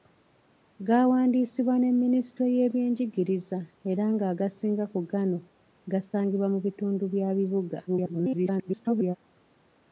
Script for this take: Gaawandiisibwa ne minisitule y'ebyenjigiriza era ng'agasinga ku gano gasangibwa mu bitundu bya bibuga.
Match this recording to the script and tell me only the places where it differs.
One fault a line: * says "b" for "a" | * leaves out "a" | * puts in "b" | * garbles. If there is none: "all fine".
* garbles